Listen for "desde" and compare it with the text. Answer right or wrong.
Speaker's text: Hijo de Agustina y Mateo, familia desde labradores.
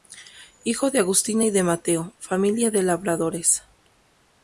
wrong